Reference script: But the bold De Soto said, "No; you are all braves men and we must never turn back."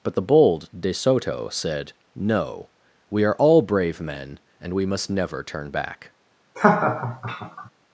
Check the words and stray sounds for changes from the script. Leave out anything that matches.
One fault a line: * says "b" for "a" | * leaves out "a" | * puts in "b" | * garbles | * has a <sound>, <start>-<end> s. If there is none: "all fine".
* says "we" for "you"
* says "brave" for "braves"
* has a laugh, 6.5-7.7 s